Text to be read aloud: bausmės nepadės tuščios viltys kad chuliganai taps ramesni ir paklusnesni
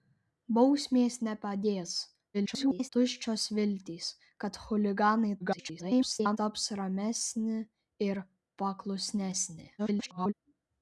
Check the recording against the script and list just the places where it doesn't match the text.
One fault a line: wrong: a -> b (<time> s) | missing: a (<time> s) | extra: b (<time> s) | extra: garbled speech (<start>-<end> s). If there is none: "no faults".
extra: garbled speech (2.3-2.9 s)
extra: garbled speech (5.4-6.4 s)
extra: garbled speech (9.8-10.3 s)